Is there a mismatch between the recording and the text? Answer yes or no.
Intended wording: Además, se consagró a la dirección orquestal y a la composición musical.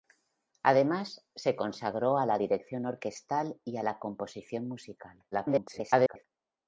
yes